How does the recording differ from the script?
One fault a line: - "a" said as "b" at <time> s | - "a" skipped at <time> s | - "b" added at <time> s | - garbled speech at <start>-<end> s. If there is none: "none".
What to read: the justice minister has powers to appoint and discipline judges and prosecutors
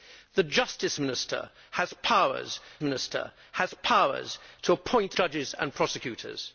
- "minister has powers" added at 2.8 s
- "and discipline" skipped at 5.1 s